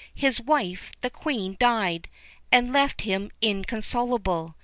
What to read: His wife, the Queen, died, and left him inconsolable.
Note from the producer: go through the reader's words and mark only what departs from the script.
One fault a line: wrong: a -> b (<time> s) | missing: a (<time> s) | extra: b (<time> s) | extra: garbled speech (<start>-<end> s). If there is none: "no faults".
no faults